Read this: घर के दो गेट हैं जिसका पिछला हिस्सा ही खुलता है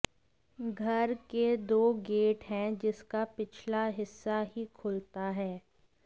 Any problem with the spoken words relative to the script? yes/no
no